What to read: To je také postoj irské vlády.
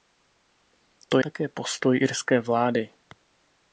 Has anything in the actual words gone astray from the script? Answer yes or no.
yes